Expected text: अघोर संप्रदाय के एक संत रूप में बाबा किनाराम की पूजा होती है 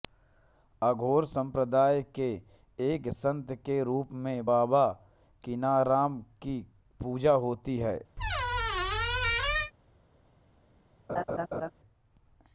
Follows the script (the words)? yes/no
no